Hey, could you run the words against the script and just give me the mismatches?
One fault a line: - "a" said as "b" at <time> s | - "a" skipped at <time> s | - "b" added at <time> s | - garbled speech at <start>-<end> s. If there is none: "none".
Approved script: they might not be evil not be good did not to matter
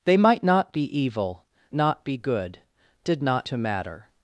none